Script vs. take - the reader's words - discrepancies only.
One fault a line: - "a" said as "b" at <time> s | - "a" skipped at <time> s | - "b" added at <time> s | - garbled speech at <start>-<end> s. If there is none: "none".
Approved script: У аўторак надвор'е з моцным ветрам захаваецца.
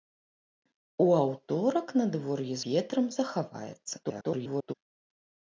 - "з моцным" skipped at 2.6 s
- garbled speech at 4.0-4.7 s